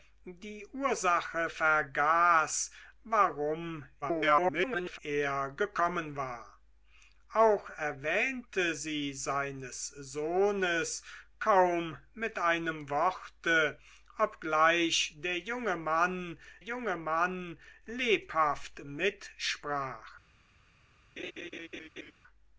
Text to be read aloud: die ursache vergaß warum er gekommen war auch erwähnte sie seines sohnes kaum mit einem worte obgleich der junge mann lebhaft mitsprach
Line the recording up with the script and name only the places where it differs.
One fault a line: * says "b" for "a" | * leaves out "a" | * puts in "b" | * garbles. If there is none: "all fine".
* garbles
* puts in "junge mann"